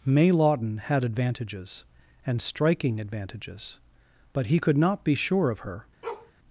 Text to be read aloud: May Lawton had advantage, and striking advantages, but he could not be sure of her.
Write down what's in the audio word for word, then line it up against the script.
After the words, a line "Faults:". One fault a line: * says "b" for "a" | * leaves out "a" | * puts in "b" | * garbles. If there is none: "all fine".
May Lawton had advantages, and striking advantages, but he could not be sure of her.
Faults:
* says "advantages" for "advantage"